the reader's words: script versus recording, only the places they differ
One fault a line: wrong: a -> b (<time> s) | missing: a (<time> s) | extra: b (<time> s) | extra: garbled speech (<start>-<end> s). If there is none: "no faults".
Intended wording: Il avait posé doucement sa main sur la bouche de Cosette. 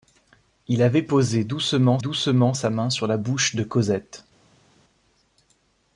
extra: doucement (2.0 s)